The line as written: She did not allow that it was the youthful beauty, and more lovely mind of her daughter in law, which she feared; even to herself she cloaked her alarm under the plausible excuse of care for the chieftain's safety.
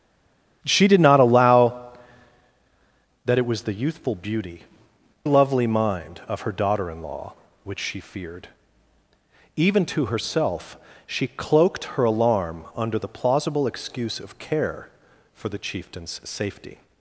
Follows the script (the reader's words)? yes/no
no